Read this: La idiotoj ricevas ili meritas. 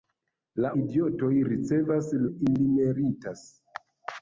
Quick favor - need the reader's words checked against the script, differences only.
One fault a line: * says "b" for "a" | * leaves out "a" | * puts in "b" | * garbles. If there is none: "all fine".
all fine